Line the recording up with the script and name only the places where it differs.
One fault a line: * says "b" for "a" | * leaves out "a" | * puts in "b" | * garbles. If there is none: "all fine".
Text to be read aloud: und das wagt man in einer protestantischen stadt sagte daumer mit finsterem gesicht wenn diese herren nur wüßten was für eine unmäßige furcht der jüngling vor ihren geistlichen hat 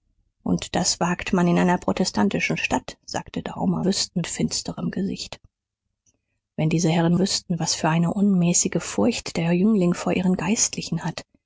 * says "wüßten" for "mit"
* leaves out "nur"